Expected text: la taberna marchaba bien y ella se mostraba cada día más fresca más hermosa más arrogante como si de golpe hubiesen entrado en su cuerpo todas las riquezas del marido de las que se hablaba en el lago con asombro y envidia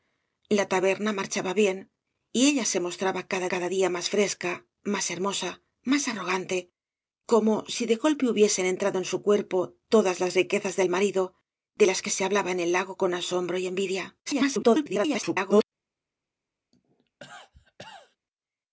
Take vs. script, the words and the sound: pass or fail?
fail